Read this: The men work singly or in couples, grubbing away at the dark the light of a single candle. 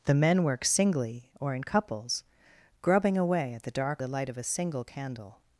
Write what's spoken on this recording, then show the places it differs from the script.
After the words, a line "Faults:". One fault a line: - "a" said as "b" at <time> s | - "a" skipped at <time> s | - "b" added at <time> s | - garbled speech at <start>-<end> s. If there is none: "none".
The men work singly or in couples, grubbing away at the dark the light of a single candle.
Faults:
none